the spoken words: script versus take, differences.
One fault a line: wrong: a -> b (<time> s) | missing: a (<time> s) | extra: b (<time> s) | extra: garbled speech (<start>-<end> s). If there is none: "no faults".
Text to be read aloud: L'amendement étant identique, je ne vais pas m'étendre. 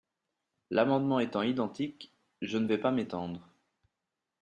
no faults